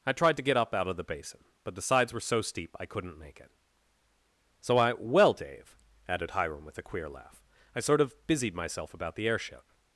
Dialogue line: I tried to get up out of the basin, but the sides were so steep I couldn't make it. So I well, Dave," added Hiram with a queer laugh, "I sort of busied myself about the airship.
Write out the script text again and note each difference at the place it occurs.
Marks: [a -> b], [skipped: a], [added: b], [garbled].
I tried to get up out of the basin, but the sides were so steep I couldn't make it. So I well, Dave," added Hiram with a queer laugh, "I sort of busied myself about the airship.